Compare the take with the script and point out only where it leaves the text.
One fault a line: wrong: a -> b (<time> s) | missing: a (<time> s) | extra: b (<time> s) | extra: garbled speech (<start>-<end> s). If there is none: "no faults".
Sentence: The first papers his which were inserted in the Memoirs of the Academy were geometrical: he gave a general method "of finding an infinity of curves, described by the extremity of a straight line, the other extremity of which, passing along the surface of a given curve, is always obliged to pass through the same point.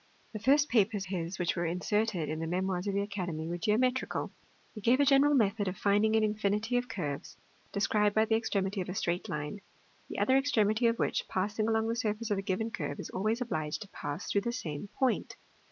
no faults